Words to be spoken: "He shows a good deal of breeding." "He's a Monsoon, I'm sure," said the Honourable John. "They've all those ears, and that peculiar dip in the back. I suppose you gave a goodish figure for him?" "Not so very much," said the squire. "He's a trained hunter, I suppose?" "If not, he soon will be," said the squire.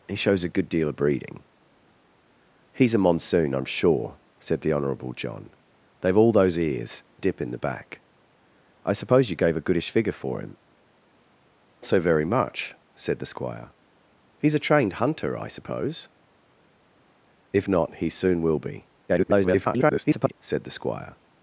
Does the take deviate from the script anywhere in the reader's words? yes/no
yes